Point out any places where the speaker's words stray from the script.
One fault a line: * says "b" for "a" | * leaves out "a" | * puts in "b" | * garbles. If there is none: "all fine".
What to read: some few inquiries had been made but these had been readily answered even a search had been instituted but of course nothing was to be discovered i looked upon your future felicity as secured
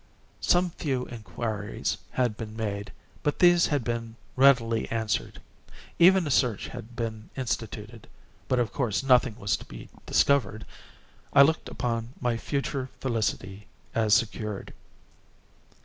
* says "my" for "your"